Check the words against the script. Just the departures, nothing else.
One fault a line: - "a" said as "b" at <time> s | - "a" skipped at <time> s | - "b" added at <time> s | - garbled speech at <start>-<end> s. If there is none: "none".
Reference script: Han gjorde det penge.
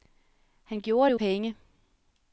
none